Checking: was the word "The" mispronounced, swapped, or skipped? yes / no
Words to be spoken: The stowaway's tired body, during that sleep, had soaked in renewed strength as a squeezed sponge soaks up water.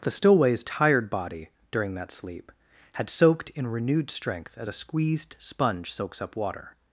no